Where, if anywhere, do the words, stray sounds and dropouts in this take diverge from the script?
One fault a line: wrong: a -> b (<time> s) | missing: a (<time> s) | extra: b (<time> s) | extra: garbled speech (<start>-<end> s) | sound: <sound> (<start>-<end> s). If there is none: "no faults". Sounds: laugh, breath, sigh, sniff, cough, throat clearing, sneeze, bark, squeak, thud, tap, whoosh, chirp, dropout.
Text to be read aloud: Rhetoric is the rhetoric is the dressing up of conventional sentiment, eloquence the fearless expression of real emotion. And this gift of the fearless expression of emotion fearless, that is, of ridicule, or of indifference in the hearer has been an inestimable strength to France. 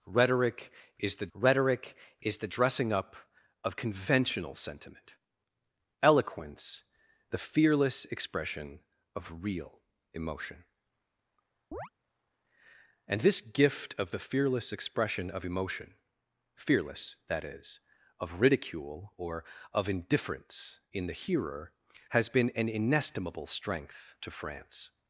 sound: chirp (11.7-11.9 s)